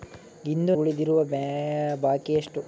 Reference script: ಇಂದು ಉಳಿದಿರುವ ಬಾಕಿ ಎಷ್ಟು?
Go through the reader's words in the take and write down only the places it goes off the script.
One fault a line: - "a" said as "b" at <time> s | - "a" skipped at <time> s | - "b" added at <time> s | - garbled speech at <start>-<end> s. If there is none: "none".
none